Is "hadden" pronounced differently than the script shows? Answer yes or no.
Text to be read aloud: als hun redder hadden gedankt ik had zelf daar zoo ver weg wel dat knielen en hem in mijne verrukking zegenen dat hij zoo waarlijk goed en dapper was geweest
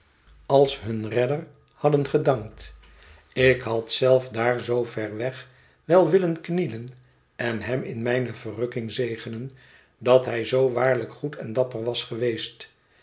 no